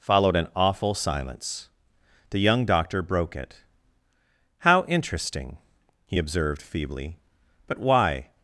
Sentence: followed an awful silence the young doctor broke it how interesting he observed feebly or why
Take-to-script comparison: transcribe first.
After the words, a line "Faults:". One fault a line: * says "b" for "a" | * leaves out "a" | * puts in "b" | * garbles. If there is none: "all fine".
followed an awful silence the young doctor broke it how interesting he observed feebly but why
Faults:
* says "but" for "or"